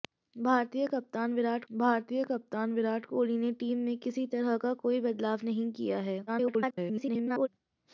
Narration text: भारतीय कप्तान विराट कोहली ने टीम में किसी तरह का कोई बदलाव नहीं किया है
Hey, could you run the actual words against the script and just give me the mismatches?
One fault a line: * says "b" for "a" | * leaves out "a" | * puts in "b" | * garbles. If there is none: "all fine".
* puts in "भारतीय कप्तान विराट"
* garbles